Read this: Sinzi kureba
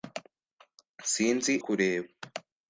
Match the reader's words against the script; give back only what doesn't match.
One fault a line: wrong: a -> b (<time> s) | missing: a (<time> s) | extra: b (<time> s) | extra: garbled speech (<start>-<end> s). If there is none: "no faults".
no faults